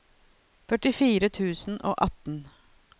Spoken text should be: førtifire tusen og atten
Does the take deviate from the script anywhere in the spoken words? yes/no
no